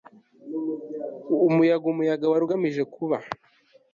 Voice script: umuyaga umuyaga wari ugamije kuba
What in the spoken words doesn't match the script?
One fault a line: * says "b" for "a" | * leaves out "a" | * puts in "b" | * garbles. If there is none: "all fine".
all fine